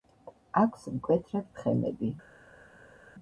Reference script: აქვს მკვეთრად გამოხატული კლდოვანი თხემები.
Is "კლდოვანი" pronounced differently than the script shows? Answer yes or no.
yes